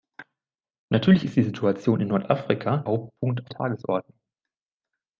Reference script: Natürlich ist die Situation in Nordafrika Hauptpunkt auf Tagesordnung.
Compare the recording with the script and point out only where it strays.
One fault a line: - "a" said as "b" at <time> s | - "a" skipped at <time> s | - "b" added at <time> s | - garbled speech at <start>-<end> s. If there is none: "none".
none